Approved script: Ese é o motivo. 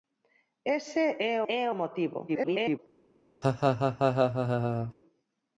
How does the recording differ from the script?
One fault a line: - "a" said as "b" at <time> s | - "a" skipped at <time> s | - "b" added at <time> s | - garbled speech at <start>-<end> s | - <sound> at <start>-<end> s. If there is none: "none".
- "é" added at 1.5 s
- garbled speech at 2.3-2.8 s
- laugh at 3.4-4.9 s